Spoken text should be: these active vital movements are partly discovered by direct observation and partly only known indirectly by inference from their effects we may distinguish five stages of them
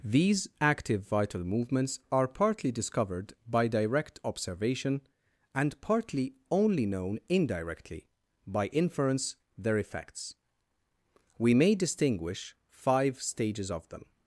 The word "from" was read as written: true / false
false